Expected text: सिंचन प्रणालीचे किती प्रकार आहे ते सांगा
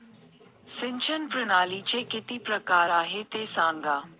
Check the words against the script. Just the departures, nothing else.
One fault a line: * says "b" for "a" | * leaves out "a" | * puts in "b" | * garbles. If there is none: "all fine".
all fine